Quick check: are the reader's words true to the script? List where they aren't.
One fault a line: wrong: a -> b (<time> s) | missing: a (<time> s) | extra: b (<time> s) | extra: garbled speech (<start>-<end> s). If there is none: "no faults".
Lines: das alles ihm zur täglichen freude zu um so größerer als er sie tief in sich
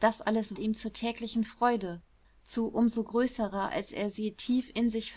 no faults